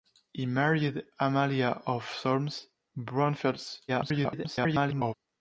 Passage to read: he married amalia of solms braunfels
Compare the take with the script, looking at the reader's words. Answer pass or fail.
fail